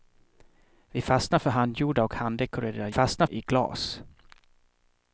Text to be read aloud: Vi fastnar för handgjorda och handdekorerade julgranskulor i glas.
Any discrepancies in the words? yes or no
yes